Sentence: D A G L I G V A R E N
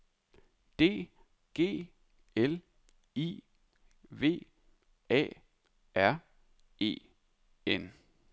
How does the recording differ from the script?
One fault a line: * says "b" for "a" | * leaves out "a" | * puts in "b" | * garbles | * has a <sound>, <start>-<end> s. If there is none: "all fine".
* leaves out "A"
* leaves out "G"